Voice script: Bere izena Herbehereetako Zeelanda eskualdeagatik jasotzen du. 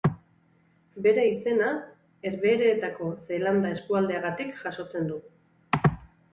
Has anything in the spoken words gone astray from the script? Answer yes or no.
no